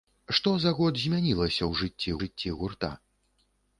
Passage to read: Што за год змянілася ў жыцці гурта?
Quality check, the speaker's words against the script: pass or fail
fail